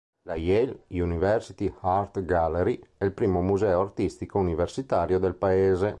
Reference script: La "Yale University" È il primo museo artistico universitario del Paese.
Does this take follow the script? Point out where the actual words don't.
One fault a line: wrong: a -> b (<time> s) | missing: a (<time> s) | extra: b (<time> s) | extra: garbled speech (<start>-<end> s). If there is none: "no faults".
extra: Art Gallery (1.8 s)